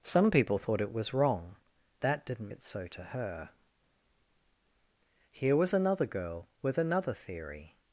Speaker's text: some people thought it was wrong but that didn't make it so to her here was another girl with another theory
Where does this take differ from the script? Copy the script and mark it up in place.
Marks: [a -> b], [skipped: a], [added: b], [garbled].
some people thought it was wrong [skipped: but] that didn't [skipped: make] it so to her here was another girl with another theory